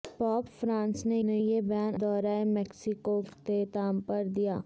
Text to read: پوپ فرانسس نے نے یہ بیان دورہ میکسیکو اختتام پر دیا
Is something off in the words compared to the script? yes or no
no